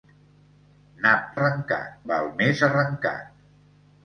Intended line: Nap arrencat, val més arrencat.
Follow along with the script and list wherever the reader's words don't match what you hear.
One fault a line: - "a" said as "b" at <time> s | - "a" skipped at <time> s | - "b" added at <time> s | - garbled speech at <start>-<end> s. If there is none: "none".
none